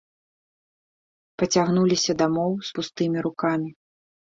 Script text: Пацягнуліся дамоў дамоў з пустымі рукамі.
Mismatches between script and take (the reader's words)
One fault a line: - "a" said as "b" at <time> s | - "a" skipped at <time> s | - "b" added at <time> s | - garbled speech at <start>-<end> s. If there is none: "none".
- "дамоў" skipped at 2.5 s